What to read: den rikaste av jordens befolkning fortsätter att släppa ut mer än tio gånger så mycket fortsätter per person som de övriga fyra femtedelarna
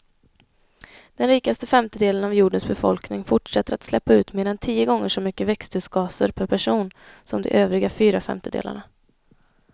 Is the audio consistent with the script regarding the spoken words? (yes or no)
no